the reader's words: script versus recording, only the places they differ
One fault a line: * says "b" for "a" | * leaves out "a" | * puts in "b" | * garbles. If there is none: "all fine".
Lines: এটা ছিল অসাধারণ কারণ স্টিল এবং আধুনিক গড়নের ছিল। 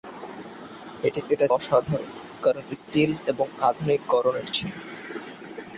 * leaves out "ছিল"